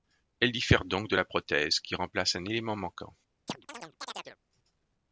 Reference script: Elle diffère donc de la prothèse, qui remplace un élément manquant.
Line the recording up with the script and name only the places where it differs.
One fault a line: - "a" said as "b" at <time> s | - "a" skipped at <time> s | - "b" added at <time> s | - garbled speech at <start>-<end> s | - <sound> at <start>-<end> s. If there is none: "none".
- chirp at 3.5-4.4 s